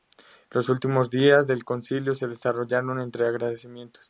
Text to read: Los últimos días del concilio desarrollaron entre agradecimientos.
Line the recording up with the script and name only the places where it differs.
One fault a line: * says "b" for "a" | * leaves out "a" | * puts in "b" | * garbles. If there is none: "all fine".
* puts in "se"